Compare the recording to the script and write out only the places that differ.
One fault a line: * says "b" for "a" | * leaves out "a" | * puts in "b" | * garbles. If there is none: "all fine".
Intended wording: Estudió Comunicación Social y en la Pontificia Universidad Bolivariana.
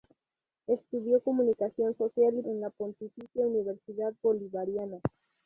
all fine